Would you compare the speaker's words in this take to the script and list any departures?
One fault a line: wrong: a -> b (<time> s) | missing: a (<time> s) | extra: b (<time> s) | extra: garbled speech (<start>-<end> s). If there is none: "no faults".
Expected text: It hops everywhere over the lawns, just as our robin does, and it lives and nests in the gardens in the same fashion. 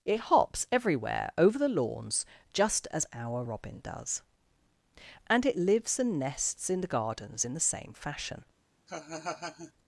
no faults